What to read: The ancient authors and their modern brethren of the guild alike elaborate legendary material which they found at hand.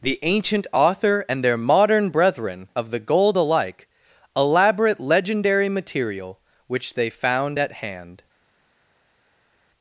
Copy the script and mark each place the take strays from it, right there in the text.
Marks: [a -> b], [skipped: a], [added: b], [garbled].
The ancient [authors -> author] and their modern brethren of the [guild -> gold] alike elaborate legendary material which they found at hand.